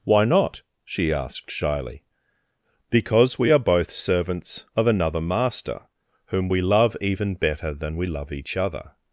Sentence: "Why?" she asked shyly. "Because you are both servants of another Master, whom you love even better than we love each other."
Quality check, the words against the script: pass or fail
fail